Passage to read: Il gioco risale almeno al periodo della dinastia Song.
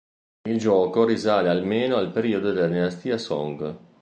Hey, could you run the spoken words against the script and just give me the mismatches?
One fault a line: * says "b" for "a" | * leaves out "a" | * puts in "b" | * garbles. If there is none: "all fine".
all fine